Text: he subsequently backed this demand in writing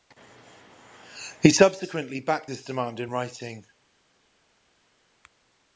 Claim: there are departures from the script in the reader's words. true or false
false